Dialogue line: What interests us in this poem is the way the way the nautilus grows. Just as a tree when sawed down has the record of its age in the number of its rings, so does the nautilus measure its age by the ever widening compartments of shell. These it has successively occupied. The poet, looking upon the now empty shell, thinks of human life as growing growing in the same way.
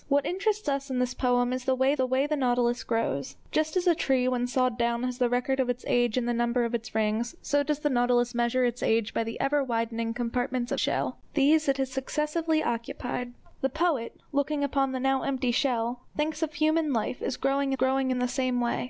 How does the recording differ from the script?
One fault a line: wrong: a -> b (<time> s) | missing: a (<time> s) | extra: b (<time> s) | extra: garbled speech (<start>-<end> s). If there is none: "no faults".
no faults